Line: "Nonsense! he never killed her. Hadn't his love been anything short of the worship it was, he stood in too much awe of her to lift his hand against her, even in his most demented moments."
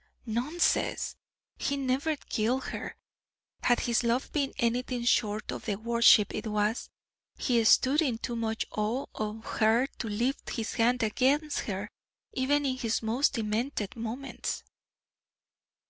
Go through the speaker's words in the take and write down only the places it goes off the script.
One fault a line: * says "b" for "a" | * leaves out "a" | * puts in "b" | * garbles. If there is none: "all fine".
* says "Had" for "Hadn't"